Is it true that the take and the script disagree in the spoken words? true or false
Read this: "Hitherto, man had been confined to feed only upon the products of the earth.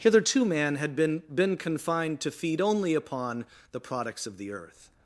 true